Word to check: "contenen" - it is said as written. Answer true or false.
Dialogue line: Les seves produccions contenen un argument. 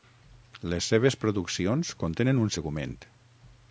true